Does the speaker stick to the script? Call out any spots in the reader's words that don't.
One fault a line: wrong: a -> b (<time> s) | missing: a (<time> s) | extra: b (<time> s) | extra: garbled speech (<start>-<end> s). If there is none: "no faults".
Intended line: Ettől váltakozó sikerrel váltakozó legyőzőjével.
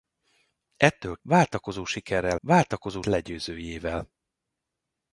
no faults